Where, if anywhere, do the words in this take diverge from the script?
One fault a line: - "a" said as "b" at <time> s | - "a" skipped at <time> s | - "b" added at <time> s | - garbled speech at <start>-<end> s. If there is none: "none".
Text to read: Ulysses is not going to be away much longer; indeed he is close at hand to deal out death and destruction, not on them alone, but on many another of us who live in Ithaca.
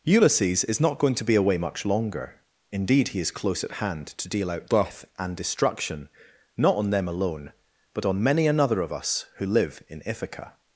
none